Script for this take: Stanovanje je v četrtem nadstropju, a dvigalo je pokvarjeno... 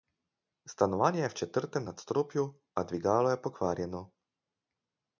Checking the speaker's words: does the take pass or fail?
pass